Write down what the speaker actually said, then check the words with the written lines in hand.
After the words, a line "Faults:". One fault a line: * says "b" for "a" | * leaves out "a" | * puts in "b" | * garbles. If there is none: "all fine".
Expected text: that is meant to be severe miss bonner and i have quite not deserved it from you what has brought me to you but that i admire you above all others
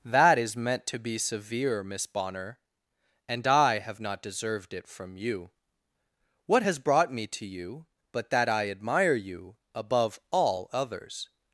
that is meant to be severe miss bonner and i have not deserved it from you what has brought me to you but that i admire you above all others
Faults:
* leaves out "quite"